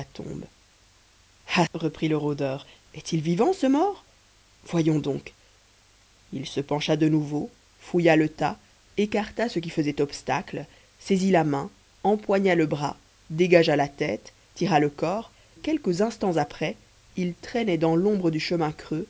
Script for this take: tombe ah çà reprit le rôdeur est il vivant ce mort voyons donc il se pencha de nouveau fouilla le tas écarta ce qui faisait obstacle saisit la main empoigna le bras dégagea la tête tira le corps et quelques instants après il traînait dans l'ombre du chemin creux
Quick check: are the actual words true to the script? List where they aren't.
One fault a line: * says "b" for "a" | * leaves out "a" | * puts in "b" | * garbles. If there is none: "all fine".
* leaves out "çà"
* leaves out "et"